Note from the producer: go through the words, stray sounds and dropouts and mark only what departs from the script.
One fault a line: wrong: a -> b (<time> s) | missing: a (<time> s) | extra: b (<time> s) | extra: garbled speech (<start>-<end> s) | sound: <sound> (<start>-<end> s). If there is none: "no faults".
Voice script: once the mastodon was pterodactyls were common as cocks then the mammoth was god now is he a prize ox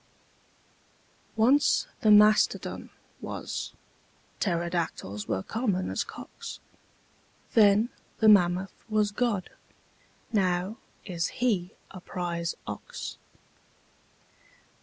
no faults